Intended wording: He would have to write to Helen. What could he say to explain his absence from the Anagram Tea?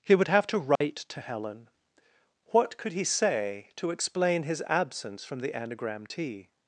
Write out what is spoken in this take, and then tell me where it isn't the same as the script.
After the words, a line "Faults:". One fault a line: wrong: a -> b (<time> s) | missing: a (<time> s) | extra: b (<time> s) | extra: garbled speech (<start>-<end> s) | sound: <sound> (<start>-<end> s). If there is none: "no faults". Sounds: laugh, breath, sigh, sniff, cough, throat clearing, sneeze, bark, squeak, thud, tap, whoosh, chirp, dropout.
He would have to write to Helen. What could he say to explain his absence from the Anagram Tea?
Faults:
sound: dropout (0.8-0.8 s)